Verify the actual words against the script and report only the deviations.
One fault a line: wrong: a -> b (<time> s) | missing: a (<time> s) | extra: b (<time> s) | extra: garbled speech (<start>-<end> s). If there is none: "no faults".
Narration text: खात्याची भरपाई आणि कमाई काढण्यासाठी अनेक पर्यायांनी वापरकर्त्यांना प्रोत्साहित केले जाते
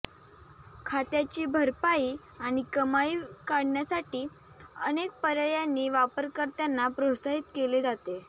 no faults